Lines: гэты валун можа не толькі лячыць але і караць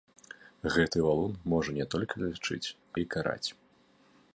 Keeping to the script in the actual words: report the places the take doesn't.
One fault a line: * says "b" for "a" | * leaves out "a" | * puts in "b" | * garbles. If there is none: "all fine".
* leaves out "але"